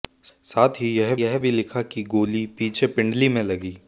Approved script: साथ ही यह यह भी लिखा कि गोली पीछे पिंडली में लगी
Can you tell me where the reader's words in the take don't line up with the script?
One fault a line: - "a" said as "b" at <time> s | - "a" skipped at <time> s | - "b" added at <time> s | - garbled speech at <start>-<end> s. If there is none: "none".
none